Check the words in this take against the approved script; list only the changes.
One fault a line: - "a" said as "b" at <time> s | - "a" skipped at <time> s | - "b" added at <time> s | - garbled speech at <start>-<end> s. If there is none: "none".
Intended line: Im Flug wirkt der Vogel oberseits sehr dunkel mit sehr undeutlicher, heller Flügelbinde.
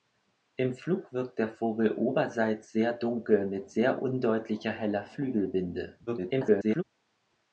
- garbled speech at 6.1-6.8 s